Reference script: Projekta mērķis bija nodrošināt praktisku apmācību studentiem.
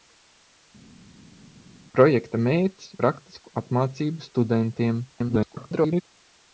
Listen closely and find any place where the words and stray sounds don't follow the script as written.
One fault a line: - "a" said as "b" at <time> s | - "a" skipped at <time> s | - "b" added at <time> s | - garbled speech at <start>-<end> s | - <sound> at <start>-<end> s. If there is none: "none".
- "bija nodrošināt" skipped at 2.9 s
- garbled speech at 5.1-6.0 s